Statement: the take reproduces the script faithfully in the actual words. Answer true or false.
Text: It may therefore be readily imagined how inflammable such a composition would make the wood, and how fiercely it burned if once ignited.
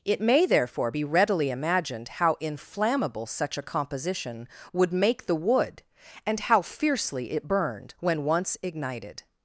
false